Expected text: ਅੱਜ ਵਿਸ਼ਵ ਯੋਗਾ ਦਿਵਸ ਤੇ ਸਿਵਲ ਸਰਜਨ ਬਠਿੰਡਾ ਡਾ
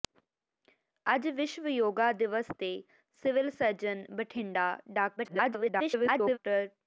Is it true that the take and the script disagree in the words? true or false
true